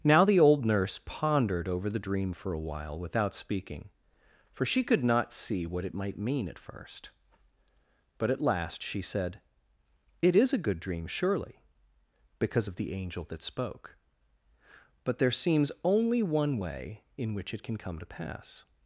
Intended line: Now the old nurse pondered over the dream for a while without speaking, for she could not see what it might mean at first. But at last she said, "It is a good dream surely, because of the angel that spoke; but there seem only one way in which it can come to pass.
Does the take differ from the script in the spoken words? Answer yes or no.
yes